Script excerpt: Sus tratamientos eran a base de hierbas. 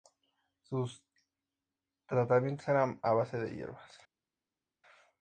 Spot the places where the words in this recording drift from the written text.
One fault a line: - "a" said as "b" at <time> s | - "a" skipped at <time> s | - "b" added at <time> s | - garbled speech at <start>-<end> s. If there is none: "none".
none